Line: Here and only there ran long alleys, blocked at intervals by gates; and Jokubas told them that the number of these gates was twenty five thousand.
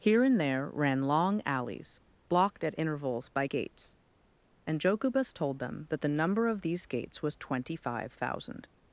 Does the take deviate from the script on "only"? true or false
true